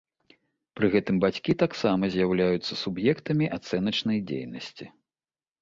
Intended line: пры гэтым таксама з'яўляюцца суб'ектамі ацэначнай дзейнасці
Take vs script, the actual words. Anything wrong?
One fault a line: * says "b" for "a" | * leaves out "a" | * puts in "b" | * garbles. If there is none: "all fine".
* puts in "бацькі"